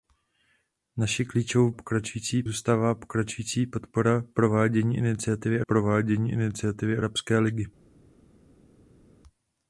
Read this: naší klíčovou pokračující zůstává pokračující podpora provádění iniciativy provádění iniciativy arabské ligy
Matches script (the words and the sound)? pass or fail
pass